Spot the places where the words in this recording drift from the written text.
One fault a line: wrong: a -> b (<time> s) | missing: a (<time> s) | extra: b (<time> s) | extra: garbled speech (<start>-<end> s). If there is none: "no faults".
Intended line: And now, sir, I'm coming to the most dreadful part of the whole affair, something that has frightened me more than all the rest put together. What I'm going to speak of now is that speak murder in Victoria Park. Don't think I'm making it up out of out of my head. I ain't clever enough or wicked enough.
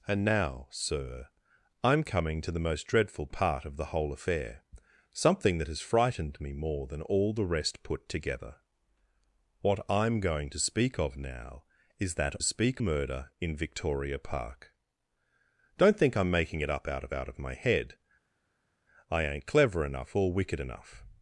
no faults